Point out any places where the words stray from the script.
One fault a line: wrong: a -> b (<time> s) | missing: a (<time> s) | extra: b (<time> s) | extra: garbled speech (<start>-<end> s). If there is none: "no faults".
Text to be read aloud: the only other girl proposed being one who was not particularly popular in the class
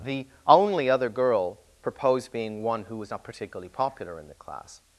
no faults